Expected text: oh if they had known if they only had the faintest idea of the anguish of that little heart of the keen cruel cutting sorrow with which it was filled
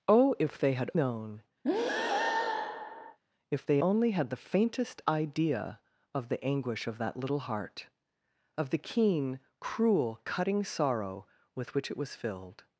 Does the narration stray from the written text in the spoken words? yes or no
no